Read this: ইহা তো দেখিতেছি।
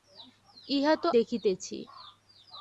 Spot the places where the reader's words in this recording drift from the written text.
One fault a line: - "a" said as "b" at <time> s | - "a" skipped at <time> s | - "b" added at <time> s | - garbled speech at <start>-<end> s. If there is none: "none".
none